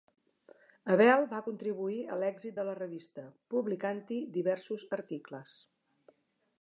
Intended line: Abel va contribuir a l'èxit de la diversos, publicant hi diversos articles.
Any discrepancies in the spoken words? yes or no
yes